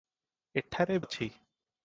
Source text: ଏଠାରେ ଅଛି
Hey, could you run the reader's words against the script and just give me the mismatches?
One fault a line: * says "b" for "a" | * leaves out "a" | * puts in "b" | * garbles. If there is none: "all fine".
all fine